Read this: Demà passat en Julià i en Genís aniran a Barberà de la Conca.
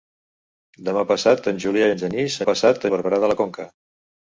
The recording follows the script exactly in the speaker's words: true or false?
false